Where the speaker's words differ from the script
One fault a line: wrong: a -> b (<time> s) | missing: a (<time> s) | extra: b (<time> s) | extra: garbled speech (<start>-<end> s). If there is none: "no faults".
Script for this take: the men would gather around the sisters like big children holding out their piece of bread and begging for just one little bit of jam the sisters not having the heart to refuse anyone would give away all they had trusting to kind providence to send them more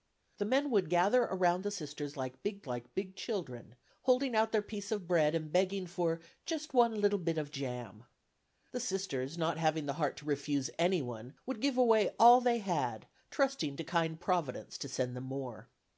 extra: like big (2.6 s)